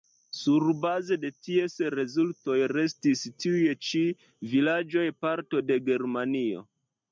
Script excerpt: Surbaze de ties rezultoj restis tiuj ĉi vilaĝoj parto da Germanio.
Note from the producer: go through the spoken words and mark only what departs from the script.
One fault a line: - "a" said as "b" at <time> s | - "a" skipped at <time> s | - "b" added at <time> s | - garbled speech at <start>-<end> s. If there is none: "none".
- "da" said as "de" at 5.7 s